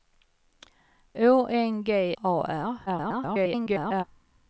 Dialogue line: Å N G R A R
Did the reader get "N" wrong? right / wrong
right